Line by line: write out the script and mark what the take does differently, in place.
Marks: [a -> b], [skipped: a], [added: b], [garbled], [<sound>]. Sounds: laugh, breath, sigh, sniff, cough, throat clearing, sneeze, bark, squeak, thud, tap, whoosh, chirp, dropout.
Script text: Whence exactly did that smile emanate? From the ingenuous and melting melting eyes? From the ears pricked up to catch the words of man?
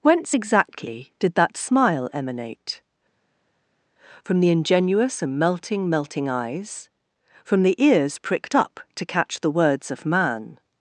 Whence exactly did that smile emanate? From the ingenuous and melting melting eyes? From the ears pricked up to catch the words of man?